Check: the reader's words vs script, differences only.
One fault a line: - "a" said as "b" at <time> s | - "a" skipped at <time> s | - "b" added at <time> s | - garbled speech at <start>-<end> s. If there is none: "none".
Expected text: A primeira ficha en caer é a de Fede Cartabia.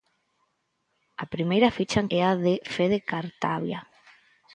- "caer" skipped at 2.1 s